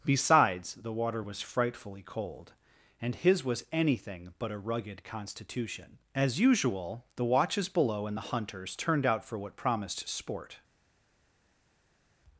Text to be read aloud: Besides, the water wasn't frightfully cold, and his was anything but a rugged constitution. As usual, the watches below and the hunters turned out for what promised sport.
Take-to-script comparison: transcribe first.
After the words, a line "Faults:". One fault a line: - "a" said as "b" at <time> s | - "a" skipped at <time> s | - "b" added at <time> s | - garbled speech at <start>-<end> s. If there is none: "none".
Besides, the water was frightfully cold, and his was anything but a rugged constitution. As usual, the watches below and the hunters turned out for what promised sport.
Faults:
- "wasn't" said as "was" at 1.2 s